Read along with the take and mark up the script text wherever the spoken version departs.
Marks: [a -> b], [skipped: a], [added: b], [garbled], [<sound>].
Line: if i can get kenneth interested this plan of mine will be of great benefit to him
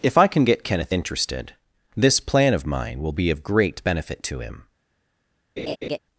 if i can get kenneth interested this plan of mine will be of great benefit to him [laugh]